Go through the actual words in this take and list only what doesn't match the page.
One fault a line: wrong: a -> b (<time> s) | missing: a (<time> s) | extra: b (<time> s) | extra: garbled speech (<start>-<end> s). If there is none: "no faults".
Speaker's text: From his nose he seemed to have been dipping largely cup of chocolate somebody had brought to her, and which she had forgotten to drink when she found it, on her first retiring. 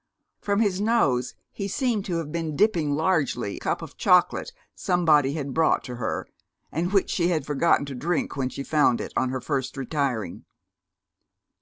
no faults